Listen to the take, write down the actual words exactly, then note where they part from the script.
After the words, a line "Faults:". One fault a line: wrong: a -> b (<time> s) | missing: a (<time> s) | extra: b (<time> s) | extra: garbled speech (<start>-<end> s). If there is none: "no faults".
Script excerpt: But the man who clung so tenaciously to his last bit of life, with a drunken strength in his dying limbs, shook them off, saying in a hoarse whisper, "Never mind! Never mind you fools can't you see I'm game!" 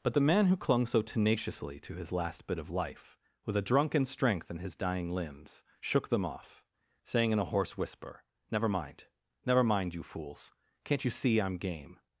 But the man who clung so tenaciously to his last bit of life, with a drunken strength in his dying limbs, shook them off, saying in a hoarse whisper, "Never mind! Never mind you fools can't you see I'm game!"
Faults:
no faults